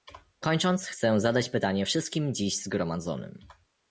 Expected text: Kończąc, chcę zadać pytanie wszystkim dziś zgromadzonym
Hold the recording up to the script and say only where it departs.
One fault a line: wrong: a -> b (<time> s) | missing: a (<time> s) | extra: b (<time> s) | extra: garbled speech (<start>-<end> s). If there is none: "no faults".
no faults